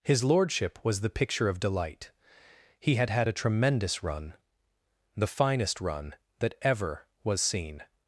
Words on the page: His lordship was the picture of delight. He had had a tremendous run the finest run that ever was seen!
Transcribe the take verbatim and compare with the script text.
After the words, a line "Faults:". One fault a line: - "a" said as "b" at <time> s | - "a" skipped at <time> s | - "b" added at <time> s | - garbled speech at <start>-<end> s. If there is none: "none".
His lordship was the picture of delight. He had had a tremendous run the finest run that ever was seen!
Faults:
none